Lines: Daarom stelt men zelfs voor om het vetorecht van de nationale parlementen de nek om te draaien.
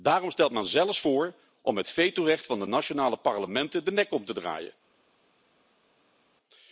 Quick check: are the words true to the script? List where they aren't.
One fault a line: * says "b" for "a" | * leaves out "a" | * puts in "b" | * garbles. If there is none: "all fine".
all fine